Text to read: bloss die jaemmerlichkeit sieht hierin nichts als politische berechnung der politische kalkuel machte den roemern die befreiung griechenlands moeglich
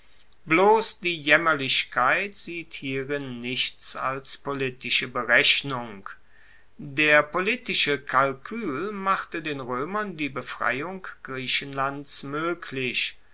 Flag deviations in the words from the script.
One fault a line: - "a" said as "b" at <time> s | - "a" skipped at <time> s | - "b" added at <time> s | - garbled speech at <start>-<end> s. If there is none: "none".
none